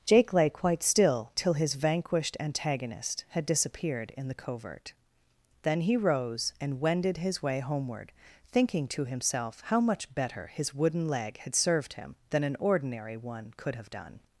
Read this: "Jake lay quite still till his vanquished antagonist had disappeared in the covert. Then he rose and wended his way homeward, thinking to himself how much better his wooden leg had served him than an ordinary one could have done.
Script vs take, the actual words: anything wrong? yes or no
no